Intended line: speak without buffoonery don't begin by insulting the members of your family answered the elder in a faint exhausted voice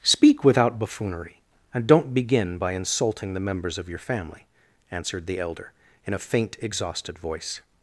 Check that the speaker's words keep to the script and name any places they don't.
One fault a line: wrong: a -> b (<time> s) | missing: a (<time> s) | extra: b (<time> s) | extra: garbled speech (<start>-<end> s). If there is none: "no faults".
extra: and (1.7 s)